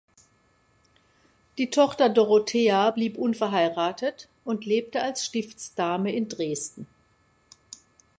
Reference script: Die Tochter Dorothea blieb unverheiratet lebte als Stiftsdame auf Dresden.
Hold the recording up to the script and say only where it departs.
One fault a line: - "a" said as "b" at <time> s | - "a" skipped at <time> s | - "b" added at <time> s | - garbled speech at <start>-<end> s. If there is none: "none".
- "und" added at 4.4 s
- "auf" said as "in" at 6.1 s